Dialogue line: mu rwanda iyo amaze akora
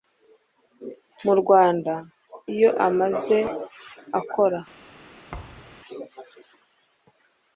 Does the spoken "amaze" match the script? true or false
true